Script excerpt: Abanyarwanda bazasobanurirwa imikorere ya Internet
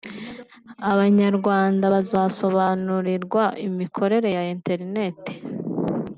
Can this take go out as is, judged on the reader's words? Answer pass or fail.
pass